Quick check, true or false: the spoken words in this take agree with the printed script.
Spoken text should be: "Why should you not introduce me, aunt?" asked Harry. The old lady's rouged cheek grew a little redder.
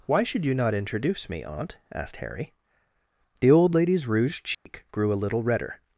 true